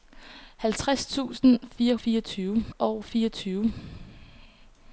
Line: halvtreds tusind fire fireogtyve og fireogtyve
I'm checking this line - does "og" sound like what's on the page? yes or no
yes